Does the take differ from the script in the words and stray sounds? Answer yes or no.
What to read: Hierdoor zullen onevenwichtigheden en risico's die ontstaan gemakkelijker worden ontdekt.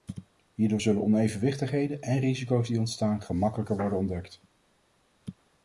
no